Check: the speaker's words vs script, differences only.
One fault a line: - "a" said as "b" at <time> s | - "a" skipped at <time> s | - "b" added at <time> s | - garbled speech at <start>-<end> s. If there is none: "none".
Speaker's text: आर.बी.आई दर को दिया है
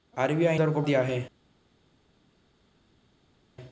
none